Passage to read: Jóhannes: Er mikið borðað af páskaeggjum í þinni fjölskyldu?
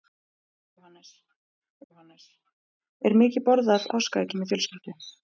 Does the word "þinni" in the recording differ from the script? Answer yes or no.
yes